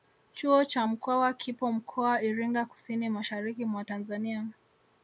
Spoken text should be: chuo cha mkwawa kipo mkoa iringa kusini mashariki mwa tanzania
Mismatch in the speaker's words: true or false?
false